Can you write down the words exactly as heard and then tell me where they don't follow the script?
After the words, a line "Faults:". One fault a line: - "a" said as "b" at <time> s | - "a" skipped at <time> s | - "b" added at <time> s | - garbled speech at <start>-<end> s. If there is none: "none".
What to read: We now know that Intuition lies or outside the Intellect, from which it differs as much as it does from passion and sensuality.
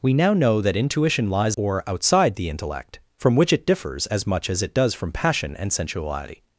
We now know that Intuition lies or outside the Intellect, from which it differs as much as it does from passion and sensuality.
Faults:
none